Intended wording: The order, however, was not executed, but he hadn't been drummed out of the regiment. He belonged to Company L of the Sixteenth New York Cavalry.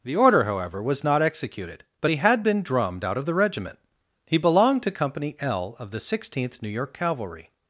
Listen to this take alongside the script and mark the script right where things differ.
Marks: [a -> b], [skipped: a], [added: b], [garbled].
The order, however, was not executed, but he [hadn't -> had] been drummed out of the regiment. He belonged to Company L of the Sixteenth New York Cavalry.